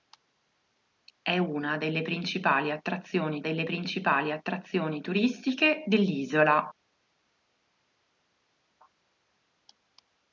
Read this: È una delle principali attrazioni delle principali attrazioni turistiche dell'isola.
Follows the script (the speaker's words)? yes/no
yes